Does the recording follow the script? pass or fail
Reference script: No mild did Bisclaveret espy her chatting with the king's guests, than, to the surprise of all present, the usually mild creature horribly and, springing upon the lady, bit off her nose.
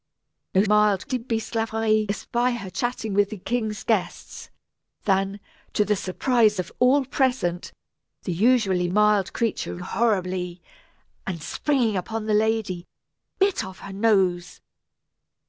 pass